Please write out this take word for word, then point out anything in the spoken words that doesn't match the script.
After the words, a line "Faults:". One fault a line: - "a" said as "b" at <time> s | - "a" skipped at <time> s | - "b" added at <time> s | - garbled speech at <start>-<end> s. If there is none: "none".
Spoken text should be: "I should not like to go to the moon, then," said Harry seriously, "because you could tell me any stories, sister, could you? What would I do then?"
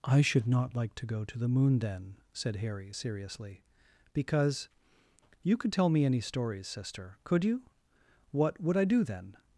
"I should not like to go to the moon, then," said Harry seriously, "because you could tell me any stories, sister, could you? What would I do then?"
Faults:
none